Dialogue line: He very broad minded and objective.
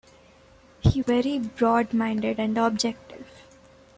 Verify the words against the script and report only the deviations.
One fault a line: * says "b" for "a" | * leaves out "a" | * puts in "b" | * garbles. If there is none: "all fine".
all fine